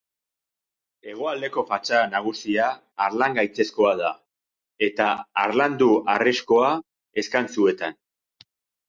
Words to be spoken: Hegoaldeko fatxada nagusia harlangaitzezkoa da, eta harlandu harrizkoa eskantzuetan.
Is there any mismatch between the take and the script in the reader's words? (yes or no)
no